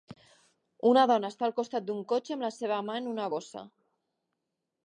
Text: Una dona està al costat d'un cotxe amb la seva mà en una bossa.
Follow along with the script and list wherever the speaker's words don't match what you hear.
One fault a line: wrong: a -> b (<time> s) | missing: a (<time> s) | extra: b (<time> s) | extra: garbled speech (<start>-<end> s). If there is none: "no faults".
no faults